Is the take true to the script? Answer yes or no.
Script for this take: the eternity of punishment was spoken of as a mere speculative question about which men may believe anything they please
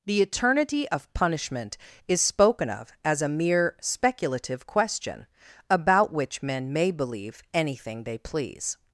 no